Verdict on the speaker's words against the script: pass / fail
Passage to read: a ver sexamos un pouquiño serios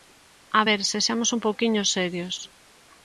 pass